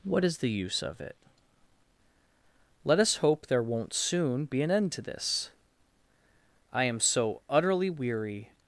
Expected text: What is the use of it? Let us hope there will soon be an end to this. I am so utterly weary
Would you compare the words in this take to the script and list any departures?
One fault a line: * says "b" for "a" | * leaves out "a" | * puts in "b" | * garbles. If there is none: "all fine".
* says "won't" for "will"